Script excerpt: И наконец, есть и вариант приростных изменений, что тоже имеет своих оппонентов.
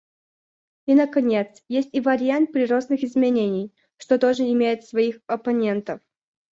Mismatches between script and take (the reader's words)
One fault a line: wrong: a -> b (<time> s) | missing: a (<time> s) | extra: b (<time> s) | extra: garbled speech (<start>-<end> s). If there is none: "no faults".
no faults